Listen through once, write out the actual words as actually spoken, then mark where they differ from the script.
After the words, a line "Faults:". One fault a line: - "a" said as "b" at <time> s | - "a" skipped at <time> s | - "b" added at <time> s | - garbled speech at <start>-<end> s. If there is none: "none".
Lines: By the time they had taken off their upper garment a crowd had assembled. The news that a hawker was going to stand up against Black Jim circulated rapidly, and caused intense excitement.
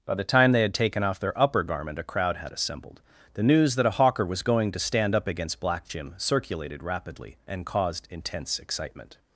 By the time they had taken off their upper garment a crowd had assembled. The news that a hawker was going to stand up against Black Jim circulated rapidly, and caused intense excitement.
Faults:
none